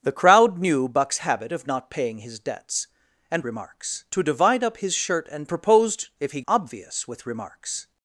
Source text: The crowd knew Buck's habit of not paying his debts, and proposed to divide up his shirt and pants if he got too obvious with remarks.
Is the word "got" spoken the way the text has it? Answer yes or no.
no